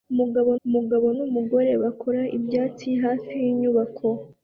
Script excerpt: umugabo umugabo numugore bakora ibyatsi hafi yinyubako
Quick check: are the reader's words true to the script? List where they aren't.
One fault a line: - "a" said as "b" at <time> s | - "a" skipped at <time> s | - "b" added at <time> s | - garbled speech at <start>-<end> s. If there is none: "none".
none